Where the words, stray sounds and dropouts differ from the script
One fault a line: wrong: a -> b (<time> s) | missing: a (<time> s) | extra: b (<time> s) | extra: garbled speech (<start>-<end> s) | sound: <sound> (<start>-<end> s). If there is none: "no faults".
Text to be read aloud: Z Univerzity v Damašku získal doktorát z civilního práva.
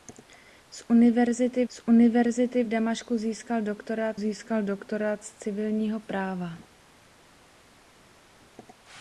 extra: z Univerzity (1.7 s)
extra: získal doktorát (4.2 s)